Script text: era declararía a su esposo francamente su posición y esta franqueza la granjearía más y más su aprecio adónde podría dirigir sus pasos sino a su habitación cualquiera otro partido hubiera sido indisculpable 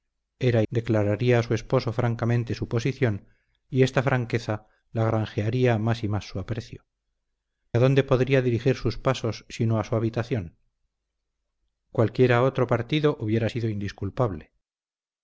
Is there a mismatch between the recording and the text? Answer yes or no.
no